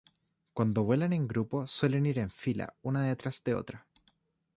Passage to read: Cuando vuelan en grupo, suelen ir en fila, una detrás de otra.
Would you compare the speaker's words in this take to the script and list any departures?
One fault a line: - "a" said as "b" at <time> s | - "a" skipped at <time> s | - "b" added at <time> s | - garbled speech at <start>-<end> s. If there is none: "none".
none